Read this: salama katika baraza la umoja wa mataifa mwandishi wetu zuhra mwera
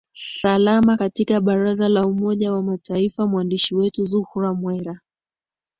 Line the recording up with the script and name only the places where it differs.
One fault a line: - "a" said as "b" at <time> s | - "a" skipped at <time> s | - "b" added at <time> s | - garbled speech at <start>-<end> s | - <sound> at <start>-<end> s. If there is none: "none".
none